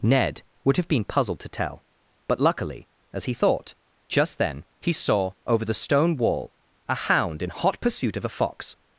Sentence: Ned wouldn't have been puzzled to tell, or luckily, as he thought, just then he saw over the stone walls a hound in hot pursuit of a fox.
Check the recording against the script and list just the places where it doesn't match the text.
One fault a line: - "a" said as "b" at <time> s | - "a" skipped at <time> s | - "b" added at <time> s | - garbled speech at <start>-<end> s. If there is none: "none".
- "wouldn't" said as "would" at 0.6 s
- "or" said as "but" at 2.3 s
- "walls" said as "wall" at 6.2 s